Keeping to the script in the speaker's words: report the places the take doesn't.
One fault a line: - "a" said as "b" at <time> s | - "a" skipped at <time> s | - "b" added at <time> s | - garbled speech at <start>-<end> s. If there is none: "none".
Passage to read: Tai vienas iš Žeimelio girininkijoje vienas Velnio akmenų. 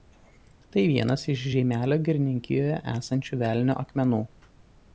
- "vienas" said as "esančių" at 2.9 s